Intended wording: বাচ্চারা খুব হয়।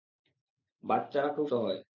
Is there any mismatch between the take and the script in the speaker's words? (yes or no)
no